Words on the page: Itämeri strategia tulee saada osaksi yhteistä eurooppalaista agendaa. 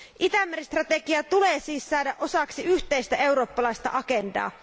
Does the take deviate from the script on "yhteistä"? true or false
false